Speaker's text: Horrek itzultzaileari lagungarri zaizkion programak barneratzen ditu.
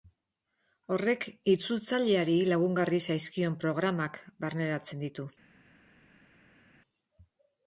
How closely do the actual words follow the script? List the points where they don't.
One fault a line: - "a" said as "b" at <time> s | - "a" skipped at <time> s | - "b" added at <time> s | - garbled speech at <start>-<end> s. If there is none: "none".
none